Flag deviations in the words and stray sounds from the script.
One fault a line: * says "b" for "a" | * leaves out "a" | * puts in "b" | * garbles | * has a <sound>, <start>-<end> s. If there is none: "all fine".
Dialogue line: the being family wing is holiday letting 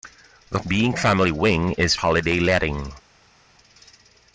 all fine